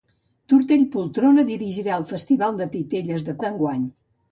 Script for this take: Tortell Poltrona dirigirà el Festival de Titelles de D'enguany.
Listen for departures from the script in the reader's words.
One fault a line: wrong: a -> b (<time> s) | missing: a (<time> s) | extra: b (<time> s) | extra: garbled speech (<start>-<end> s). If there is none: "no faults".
no faults